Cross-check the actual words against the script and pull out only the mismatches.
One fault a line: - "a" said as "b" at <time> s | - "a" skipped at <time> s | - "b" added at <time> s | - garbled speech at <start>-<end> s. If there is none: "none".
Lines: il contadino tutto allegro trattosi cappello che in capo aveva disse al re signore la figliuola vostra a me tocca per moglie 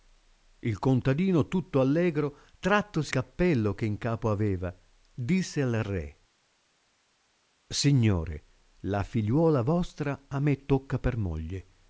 none